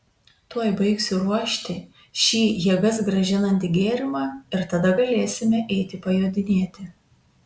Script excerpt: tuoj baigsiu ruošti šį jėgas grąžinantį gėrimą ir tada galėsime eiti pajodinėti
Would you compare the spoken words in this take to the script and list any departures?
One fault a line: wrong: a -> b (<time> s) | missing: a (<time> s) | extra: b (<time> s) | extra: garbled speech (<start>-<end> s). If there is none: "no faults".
no faults